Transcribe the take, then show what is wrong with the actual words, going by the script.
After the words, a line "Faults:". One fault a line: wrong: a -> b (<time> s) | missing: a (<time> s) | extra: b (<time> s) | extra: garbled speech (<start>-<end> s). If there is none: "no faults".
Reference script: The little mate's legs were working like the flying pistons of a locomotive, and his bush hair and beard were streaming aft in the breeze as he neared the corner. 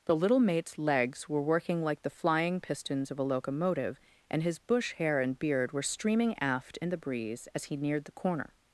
The little mate's legs were working like the flying pistons of a locomotive, and his bush hair and beard were streaming aft in the breeze as he neared the corner.
Faults:
no faults